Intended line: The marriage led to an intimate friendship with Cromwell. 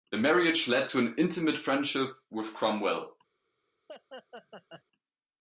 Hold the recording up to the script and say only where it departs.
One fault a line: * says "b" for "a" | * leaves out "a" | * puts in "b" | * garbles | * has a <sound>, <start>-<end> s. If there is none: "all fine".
* has a laugh, 3.9-4.8 s